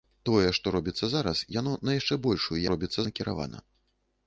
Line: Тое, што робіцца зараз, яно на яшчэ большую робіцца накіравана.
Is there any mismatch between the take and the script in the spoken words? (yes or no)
no